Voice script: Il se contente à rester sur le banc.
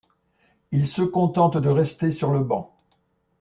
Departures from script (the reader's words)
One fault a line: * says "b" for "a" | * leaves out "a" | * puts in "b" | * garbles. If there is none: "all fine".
* says "de" for "à"